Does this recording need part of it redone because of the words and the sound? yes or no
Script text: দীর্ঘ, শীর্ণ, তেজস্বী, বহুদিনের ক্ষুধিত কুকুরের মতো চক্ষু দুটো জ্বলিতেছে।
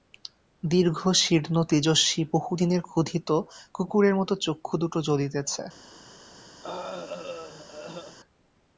yes